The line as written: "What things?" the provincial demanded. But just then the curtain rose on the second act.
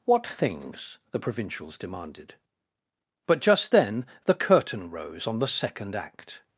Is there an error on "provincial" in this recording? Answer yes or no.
yes